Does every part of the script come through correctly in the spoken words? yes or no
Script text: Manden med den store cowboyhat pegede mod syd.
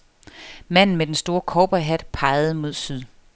yes